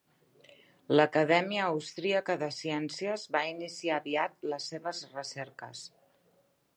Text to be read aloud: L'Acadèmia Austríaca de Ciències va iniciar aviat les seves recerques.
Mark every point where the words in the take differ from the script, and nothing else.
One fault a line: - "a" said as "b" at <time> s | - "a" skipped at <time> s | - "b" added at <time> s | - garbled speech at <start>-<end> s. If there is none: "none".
none